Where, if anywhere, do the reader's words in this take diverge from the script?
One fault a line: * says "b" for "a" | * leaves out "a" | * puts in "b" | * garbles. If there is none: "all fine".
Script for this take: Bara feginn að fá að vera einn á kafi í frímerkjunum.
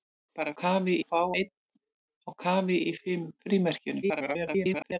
* says "kafi" for "feginn"
* leaves out "að vera"
* garbles